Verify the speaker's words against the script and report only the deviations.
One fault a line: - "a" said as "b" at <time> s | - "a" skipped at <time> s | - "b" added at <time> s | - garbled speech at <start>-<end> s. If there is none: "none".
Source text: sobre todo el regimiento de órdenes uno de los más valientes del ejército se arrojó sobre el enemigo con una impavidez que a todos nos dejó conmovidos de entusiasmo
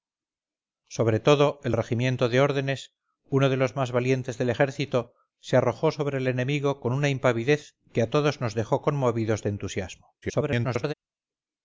- garbled speech at 10.2-10.9 s